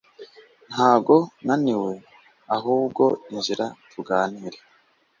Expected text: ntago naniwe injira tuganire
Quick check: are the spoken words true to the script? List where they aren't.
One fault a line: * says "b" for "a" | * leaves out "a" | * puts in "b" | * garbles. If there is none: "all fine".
* puts in "ahubwo"